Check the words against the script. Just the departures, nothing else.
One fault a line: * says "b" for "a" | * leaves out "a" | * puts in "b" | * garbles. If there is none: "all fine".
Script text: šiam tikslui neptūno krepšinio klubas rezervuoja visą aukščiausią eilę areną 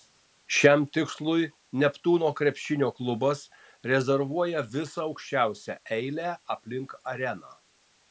* puts in "aplink"